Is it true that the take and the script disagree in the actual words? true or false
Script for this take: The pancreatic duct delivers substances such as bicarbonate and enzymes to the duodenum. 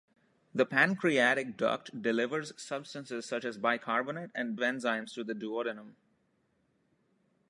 false